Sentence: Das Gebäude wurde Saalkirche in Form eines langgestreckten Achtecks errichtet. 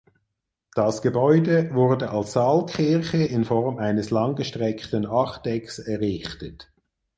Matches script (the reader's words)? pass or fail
fail